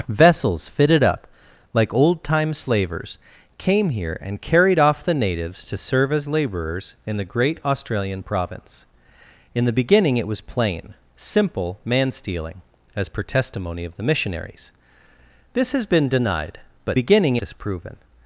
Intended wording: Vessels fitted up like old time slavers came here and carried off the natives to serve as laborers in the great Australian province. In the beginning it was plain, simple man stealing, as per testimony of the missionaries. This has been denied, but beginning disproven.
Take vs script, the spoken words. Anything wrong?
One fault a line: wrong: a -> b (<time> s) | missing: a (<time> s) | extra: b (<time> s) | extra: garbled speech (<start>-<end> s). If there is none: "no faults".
no faults